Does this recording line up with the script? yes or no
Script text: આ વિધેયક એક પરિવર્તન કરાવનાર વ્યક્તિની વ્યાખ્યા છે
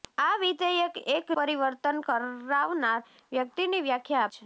yes